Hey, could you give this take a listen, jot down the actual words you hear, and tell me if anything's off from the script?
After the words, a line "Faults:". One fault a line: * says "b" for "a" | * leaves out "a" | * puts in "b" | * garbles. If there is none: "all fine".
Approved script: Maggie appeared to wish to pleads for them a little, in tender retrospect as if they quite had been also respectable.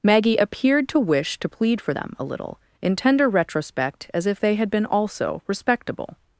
Maggie appeared to wish to plead for them a little, in tender retrospect as if they had been also respectable.
Faults:
* says "plead" for "pleads"
* leaves out "quite"